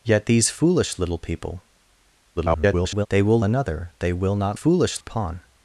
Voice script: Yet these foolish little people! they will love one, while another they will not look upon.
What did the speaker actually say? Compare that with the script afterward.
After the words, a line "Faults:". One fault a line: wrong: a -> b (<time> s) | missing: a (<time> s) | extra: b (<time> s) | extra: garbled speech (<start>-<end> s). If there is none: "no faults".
Yet these foolish little people! [garbled] they will another they will not foolish upon.
Faults:
extra: garbled speech (2.4-3.1 s)
missing: love one while (3.4 s)
wrong: look -> foolish (4.5 s)